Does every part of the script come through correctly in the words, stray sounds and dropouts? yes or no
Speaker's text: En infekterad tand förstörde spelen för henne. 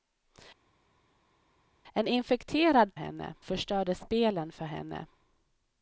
no